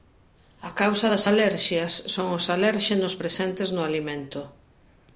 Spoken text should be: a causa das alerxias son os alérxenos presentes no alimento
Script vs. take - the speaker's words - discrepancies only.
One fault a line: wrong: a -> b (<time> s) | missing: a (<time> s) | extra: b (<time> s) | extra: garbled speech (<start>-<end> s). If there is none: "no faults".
no faults